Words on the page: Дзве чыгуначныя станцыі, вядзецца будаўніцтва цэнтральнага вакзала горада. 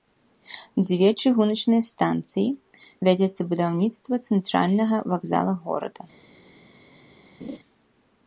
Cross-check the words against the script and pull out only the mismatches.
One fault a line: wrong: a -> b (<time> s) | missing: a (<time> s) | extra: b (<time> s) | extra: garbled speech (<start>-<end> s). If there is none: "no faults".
no faults